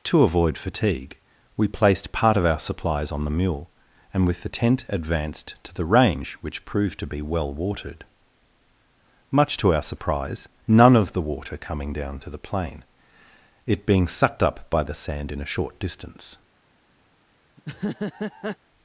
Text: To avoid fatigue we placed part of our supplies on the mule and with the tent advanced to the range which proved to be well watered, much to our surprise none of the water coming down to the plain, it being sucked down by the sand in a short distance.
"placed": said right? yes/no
yes